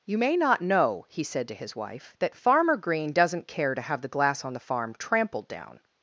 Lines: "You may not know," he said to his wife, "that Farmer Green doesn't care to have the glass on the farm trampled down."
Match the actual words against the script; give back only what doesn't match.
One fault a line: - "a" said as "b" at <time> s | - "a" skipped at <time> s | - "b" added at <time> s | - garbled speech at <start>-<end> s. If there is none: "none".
none